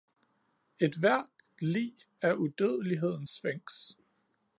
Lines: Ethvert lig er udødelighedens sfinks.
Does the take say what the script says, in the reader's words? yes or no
yes